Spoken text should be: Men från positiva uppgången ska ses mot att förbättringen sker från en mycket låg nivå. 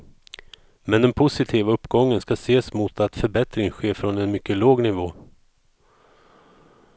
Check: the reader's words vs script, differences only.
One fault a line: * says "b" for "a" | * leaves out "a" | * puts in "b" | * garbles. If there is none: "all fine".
* says "den" for "från"